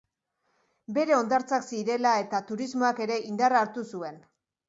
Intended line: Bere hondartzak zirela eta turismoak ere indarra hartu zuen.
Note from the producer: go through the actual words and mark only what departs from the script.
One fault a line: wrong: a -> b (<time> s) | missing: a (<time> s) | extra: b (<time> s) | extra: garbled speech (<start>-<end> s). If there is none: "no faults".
no faults